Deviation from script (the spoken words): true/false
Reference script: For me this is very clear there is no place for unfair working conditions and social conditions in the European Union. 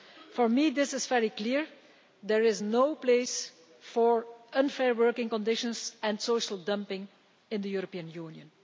true